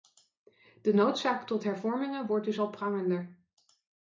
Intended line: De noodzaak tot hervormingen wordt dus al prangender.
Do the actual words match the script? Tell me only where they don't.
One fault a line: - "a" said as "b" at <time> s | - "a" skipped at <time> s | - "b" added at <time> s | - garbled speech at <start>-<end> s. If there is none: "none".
none